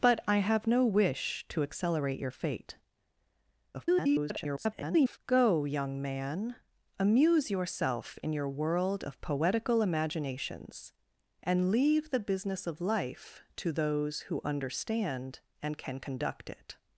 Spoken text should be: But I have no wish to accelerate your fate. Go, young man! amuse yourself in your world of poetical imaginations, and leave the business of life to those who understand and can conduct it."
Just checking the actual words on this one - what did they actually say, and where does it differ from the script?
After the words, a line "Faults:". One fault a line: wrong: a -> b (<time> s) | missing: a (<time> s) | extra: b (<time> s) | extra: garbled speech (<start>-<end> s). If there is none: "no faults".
But I have no wish to accelerate your fate. [garbled] Go, young man! amuse yourself in your world of poetical imaginations, and leave the business of life to those who understand and can conduct it."
Faults:
extra: garbled speech (3.7-5.2 s)